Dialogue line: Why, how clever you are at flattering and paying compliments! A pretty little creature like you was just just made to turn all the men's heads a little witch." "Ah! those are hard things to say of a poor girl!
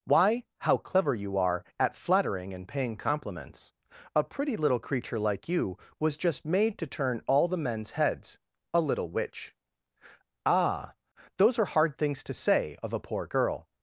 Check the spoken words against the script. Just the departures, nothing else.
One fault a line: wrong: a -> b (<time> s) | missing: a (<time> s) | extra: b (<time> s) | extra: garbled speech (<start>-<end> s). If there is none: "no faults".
missing: just (6.4 s)